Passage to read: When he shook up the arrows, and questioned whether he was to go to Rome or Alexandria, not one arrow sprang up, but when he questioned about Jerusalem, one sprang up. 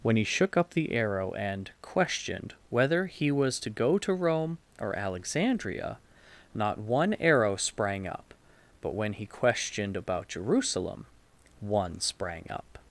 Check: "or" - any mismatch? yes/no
no